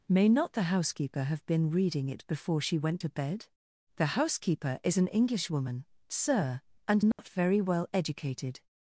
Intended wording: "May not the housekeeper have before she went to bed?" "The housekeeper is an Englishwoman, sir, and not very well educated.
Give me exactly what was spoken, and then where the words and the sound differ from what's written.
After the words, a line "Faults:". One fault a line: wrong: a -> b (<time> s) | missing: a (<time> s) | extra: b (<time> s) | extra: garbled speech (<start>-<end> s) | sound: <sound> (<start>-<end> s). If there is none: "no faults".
"May not the housekeeper have been reading it before she went to bed?" "The housekeeper is an Englishwoman, sir, and not very well educated.
Faults:
extra: been reading it (1.4 s)
sound: dropout (7.1-7.2 s)